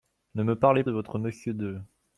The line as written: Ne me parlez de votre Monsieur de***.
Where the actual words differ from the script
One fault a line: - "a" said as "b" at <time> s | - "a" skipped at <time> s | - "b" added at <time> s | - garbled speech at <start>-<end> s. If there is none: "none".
none